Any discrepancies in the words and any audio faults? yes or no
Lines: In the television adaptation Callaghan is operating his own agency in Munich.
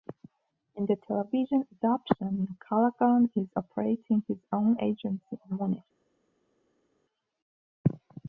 no